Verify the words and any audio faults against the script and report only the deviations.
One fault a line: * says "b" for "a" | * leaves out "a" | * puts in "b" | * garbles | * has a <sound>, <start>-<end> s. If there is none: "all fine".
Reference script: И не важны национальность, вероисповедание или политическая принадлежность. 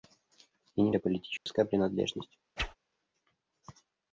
* leaves out "важны национальность вероисповедание"
* has a dropout, 1.4-1.5 s
* has a whoosh, 2.6-2.8 s